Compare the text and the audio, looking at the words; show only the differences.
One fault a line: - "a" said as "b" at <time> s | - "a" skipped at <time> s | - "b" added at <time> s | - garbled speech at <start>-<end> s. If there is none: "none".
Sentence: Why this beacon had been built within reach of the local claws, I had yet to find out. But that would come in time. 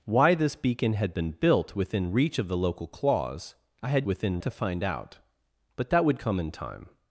- "yet" said as "within" at 4.0 s